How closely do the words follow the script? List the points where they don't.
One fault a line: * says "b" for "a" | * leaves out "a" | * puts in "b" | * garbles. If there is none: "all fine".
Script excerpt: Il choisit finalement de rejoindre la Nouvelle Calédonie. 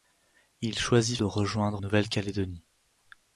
* leaves out "finalement"
* leaves out "la"